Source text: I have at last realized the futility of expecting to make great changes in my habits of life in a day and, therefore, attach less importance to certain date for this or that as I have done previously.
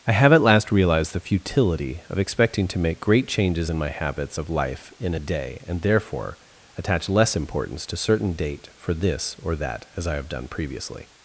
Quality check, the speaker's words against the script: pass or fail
pass